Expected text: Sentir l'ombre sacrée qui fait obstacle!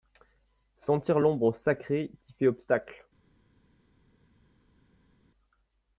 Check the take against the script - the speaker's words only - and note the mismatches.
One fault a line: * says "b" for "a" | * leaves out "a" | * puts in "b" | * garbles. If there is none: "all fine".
all fine